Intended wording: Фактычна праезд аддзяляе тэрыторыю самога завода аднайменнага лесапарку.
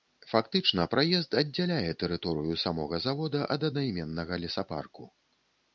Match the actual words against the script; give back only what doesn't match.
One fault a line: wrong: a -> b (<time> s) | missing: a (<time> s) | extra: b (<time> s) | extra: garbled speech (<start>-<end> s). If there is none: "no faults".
extra: ад (3.6 s)